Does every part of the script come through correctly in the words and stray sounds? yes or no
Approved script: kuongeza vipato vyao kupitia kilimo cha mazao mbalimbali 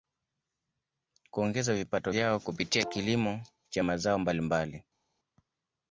yes